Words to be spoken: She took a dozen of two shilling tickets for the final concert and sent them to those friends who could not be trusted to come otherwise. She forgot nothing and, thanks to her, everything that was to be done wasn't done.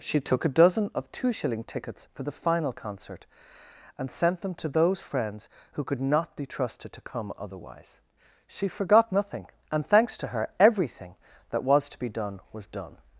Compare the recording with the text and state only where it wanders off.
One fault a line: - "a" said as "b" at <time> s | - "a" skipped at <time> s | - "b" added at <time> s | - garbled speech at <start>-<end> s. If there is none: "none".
- "wasn't" said as "was" at 12.5 s